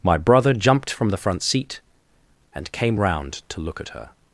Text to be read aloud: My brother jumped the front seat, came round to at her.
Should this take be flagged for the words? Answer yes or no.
yes